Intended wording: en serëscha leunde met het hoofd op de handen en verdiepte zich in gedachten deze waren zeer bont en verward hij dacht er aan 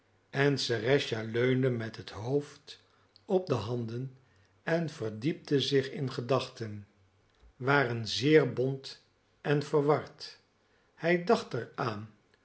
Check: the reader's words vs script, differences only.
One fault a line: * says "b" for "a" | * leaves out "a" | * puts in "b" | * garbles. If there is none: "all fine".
* leaves out "deze"